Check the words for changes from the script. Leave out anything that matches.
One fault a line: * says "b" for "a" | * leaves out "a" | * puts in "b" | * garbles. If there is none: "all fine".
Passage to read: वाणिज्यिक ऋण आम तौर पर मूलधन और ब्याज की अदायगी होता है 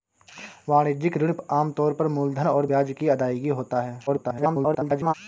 * garbles